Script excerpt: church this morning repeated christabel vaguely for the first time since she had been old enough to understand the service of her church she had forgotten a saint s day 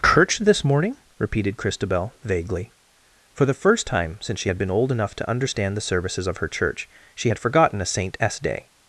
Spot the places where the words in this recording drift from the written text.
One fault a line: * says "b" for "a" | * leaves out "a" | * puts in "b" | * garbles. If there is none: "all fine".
* says "services" for "service"